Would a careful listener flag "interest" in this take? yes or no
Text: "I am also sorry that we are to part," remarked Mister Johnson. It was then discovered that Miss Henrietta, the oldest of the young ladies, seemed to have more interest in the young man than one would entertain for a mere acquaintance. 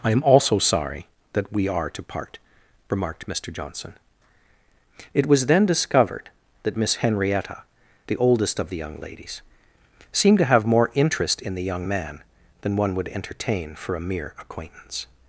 no